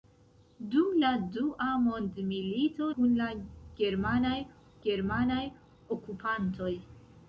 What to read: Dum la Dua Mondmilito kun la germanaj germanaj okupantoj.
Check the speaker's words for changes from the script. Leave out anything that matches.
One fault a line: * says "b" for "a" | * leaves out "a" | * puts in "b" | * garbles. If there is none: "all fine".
all fine